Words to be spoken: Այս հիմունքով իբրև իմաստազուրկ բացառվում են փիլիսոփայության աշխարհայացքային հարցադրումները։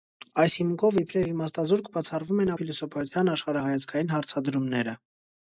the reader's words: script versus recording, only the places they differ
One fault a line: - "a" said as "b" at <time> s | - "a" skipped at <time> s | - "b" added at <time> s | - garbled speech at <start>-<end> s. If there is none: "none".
none